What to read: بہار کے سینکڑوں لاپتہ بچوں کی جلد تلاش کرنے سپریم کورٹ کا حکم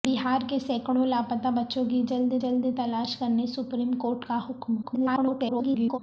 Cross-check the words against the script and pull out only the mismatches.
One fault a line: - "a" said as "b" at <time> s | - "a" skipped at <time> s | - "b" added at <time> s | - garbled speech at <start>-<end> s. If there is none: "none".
- "جلد" added at 2.4 s
- garbled speech at 4.8-6.0 s